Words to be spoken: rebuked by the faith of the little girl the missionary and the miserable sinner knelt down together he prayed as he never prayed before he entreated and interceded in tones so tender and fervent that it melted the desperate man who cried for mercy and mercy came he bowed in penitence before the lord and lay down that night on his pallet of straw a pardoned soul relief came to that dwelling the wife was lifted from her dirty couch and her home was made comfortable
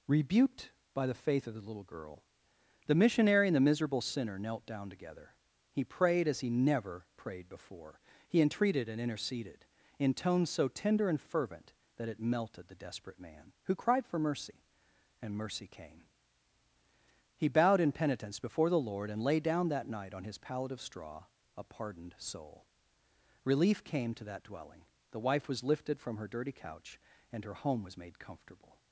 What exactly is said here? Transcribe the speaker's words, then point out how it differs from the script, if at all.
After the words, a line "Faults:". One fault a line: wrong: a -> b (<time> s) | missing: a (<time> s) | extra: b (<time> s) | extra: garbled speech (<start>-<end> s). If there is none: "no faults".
rebuked by the faith of the little girl the missionary and the miserable sinner knelt down together he prayed as he never prayed before he entreated and interceded in tones so tender and fervent that it melted the desperate man who cried for mercy and mercy came he bowed in penitence before the lord and lay down that night on his pallet of straw a pardoned soul relief came to that dwelling the wife was lifted from her dirty couch and her home was made comfortable
Faults:
no faults